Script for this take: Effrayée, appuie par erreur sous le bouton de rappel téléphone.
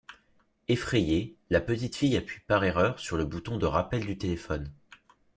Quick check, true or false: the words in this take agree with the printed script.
false